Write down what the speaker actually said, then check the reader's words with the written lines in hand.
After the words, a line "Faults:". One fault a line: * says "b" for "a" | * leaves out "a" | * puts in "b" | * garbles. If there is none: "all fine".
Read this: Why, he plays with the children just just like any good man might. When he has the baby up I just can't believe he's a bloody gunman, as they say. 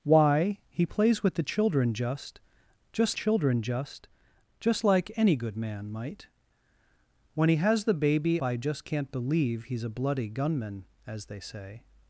Why, he plays with the children just just children just just like any good man might. When he has the baby I just can't believe he's a bloody gunman, as they say.
Faults:
* puts in "children just just"
* leaves out "up"